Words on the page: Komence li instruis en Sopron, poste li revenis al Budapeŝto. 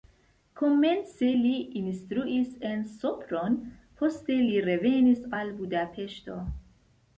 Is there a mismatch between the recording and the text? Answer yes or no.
no